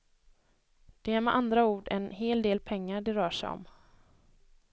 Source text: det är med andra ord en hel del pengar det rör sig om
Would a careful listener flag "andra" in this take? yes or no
no